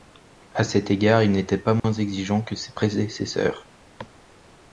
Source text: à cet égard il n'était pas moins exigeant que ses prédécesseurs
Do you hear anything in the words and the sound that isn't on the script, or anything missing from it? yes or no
yes